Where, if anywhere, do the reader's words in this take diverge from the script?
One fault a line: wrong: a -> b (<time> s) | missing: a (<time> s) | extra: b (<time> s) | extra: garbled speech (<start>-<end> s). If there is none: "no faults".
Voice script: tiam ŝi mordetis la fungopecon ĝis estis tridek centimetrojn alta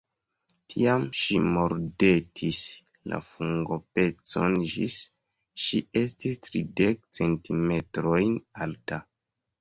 extra: ŝi (5.6 s)